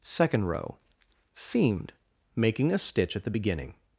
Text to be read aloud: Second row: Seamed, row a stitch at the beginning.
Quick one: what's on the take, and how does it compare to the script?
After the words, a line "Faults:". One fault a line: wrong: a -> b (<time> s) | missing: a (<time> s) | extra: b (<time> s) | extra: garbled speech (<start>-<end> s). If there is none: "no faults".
Second row: Seamed, making a stitch at the beginning.
Faults:
wrong: row -> making (2.4 s)